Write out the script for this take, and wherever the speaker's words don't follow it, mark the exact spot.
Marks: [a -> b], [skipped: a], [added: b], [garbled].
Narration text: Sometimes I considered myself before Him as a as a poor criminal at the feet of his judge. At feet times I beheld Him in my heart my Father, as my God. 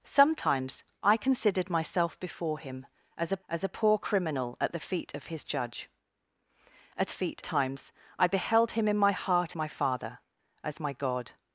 Sometimes I considered myself before Him as a as a poor criminal at the feet of his judge. At feet times I beheld Him in my heart my Father, as my God.